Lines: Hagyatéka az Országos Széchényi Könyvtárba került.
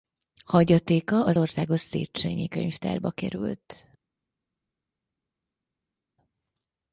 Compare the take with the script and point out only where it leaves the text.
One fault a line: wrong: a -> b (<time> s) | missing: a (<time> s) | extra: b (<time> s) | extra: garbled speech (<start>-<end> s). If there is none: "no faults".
no faults